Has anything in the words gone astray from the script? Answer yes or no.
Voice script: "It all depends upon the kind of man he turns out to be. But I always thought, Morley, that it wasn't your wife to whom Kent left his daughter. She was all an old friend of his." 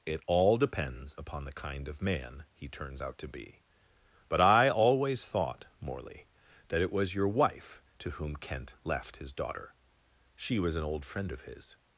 yes